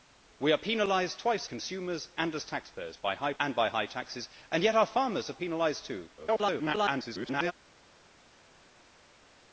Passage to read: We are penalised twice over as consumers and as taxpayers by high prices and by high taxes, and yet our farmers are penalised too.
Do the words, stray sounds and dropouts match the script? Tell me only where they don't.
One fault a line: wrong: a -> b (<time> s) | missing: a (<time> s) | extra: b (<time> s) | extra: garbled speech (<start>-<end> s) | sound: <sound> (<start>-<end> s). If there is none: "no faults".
missing: over as (1.5 s)
missing: prices (3.3 s)
extra: garbled speech (6.2-7.5 s)